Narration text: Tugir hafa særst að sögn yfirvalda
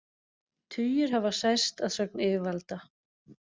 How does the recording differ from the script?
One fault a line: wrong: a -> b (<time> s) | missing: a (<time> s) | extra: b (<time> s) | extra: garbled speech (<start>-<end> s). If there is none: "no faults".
no faults